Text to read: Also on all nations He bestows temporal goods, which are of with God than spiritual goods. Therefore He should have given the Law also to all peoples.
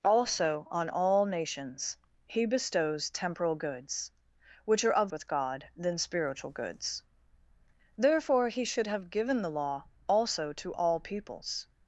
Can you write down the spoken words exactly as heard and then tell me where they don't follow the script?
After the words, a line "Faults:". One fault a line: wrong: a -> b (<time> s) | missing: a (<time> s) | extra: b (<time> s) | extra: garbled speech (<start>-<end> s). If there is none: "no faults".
Also on all nations He bestows temporal goods, which are of with God than spiritual goods. Therefore He should have given the Law also to all peoples.
Faults:
no faults